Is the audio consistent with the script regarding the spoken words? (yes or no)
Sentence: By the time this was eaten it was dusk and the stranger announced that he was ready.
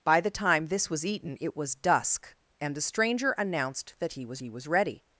no